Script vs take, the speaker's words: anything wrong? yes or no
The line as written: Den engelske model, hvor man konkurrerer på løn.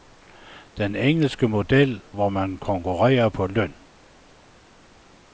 no